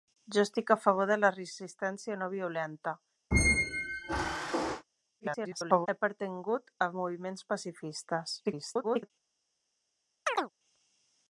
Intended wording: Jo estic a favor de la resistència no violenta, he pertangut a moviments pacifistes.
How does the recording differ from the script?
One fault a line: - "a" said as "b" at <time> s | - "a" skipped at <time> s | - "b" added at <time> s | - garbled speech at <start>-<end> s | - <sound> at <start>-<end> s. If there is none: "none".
- squeak at 3.3-4.8 s
- garbled speech at 5.2-5.9 s
- garbled speech at 8.4-9.1 s
- chirp at 10.3-10.5 s